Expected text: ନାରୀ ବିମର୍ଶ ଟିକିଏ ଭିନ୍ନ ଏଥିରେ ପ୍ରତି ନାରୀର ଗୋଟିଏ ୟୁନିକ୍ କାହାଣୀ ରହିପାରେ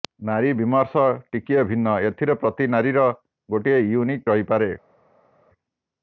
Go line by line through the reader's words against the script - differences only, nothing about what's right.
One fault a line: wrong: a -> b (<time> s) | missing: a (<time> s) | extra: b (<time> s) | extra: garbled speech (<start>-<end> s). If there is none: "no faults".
missing: କାହାଣୀ (4.3 s)